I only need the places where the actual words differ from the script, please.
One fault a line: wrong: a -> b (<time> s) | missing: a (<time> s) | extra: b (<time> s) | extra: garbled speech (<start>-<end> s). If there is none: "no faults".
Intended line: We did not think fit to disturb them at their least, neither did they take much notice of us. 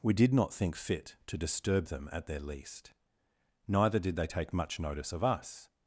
no faults